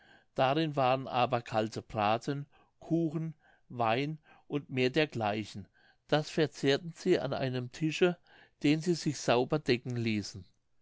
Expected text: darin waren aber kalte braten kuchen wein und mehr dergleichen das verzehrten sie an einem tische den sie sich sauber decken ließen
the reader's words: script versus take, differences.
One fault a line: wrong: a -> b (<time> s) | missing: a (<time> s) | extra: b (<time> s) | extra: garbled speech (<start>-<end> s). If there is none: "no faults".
no faults